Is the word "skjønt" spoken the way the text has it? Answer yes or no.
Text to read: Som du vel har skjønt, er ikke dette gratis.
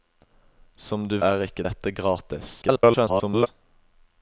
no